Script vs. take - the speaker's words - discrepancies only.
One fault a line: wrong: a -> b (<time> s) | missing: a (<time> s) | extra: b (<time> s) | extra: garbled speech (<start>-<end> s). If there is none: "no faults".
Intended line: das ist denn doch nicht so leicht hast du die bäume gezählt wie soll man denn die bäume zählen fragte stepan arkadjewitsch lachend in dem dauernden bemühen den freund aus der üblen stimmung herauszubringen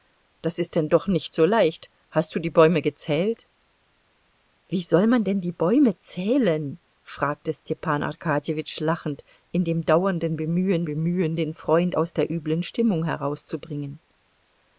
extra: bemühen (10.9 s)